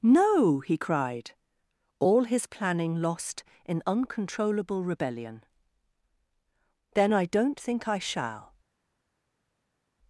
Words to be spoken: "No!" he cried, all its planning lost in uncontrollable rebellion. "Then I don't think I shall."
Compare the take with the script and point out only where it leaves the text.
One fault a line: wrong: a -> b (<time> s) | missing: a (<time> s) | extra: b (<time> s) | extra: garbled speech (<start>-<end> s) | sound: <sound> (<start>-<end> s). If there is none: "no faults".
wrong: its -> his (2.2 s)